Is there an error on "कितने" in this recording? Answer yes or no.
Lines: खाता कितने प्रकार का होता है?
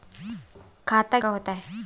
yes